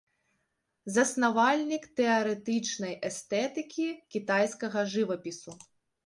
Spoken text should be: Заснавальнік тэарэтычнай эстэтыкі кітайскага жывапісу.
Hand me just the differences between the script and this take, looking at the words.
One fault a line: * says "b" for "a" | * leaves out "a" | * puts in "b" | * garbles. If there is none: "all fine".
all fine